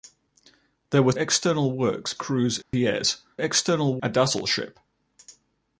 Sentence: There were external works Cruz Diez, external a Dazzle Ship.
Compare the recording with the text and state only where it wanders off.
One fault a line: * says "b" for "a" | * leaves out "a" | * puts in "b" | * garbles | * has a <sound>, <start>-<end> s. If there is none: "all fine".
* has a dropout, 2.6-2.7 s